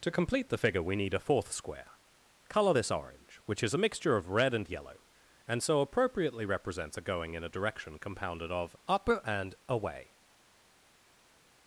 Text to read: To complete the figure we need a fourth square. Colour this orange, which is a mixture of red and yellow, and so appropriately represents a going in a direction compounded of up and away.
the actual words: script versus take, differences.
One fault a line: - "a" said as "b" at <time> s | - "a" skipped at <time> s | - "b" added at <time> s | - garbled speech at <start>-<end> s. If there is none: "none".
none